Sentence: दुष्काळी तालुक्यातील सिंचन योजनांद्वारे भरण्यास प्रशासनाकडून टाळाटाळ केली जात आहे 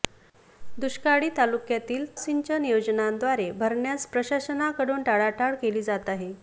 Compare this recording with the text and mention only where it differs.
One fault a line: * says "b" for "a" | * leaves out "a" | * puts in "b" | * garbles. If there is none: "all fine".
all fine